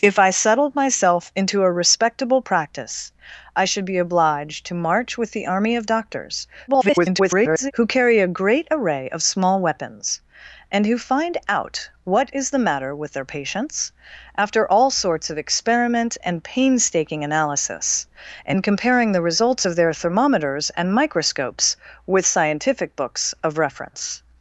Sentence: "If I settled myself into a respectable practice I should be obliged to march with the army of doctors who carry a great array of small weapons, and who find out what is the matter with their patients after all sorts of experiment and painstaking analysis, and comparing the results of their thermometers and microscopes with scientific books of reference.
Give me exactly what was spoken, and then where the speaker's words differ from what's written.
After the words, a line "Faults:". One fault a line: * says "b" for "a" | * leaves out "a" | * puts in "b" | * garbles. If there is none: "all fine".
"If I settled myself into a respectable practice I should be obliged to march with the army of doctors [garbled] who carry a great array of small weapons, and who find out what is the matter with their patients after all sorts of experiment and painstaking analysis, and comparing the results of their thermometers and microscopes with scientific books of reference.
Faults:
* garbles